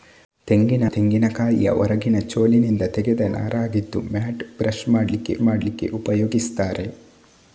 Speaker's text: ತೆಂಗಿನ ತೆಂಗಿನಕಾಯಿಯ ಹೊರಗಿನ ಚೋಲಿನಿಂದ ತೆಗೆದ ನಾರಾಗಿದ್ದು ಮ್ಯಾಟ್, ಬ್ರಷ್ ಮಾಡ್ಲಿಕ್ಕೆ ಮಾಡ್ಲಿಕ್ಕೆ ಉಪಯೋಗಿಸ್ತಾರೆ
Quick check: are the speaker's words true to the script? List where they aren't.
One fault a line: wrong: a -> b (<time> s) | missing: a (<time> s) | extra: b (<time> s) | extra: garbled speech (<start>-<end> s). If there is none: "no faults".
no faults